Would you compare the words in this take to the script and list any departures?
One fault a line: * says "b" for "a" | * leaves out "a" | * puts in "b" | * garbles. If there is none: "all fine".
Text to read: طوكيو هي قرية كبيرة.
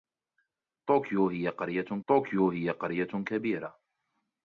* puts in "طوكيو هي قرية"